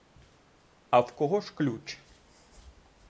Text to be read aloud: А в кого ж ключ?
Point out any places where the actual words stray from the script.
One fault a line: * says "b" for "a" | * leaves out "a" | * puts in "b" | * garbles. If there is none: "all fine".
all fine